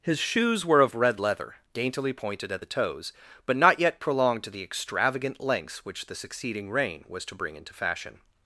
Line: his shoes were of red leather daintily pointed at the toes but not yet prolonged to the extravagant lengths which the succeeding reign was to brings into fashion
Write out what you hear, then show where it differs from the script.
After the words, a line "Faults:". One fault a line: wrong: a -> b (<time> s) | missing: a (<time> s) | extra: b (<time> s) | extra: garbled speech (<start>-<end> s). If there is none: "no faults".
his shoes were of red leather daintily pointed at the toes but not yet prolonged to the extravagant lengths which the succeeding reign was to bring into fashion
Faults:
wrong: brings -> bring (7.3 s)